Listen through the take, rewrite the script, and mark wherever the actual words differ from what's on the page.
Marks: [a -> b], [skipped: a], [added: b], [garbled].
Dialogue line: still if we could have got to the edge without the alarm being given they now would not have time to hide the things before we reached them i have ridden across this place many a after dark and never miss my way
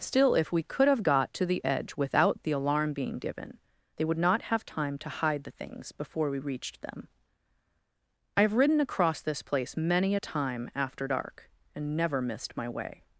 still if we could have got to the edge without the alarm being given they [skipped: now] would not have time to hide the things before we reached them i have ridden across this place many a [added: time] after dark and never [miss -> missed] my way